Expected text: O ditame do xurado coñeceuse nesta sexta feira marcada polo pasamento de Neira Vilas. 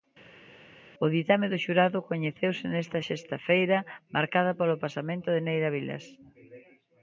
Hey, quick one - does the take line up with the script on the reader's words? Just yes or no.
yes